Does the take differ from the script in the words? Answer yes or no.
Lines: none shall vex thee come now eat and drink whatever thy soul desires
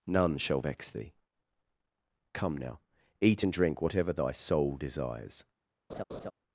no